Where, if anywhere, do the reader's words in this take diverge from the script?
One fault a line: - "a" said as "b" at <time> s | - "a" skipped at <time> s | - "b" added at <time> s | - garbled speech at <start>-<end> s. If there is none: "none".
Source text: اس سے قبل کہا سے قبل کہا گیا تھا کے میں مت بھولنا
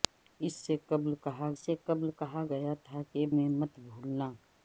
none